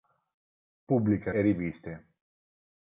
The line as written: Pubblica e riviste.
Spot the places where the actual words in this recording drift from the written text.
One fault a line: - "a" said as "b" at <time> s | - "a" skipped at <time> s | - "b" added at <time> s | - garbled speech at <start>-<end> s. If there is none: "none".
none